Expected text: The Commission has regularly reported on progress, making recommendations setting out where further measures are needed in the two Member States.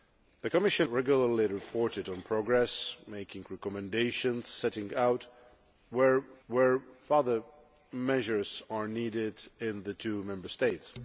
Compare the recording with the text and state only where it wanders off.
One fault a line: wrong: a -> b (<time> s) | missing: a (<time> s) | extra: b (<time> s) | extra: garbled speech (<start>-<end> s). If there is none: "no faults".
missing: has (0.9 s)
extra: where (6.5 s)